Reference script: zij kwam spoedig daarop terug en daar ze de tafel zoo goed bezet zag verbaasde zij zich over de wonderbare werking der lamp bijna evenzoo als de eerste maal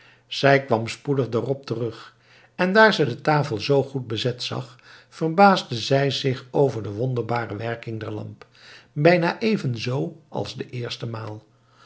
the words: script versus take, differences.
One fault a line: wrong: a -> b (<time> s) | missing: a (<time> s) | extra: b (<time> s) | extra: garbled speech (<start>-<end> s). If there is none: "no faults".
no faults